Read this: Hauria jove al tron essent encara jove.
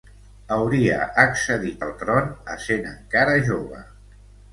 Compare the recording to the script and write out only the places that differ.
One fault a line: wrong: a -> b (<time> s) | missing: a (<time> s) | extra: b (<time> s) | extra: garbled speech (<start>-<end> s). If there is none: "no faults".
wrong: jove -> accedit (1.2 s)